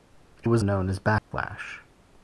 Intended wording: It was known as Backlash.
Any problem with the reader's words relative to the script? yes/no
no